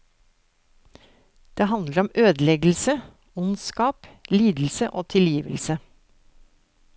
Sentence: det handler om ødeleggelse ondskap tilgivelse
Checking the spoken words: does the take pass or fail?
fail